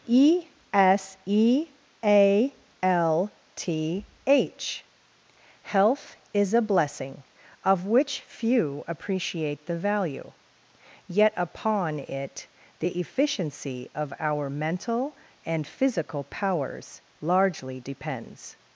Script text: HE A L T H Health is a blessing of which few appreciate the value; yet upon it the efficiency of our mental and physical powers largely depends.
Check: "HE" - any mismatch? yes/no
yes